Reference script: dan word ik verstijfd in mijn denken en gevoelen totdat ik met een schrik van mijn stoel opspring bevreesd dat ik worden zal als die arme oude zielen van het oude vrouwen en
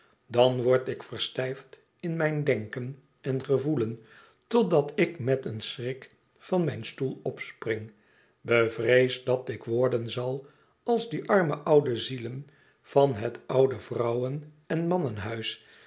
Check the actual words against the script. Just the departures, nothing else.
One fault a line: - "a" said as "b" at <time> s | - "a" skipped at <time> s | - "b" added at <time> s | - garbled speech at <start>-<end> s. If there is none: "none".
none